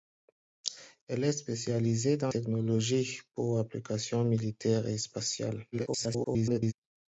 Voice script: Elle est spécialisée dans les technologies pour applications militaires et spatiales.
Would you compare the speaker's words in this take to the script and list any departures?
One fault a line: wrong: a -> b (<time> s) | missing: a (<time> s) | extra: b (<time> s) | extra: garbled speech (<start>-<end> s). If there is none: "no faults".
missing: les (2.3 s)
extra: garbled speech (5.7-6.7 s)